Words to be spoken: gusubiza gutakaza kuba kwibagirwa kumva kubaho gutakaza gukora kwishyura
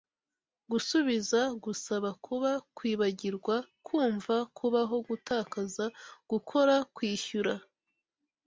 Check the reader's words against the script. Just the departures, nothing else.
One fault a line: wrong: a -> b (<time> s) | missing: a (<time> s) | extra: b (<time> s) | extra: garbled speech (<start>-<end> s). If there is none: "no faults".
wrong: gutakaza -> gusaba (1.6 s)